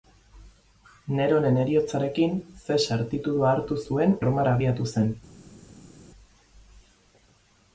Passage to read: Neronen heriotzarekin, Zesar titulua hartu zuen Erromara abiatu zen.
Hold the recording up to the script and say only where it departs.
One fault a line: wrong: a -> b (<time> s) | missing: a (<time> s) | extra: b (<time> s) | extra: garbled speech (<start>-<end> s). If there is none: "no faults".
no faults